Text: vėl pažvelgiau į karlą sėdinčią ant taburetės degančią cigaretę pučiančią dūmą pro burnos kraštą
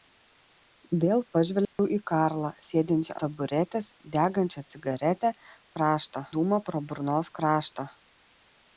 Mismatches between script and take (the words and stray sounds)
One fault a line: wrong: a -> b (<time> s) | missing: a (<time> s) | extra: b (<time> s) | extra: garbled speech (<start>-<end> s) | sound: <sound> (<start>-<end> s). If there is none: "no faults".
sound: dropout (1.7-1.8 s)
missing: ant (3.2 s)
wrong: pučiančią -> kraštą (5.8 s)